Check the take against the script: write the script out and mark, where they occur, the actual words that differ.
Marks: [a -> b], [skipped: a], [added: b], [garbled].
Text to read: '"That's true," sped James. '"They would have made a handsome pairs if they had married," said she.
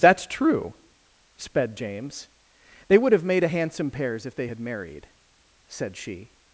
'"That's true," sped James. '"They would have made a handsome pairs if they had married," said she.